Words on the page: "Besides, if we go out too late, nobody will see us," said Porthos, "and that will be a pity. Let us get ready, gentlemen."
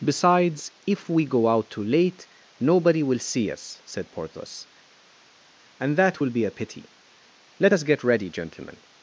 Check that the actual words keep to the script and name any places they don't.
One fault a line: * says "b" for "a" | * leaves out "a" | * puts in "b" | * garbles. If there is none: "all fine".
all fine